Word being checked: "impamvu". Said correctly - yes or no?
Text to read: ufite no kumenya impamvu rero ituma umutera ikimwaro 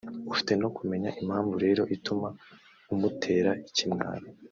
yes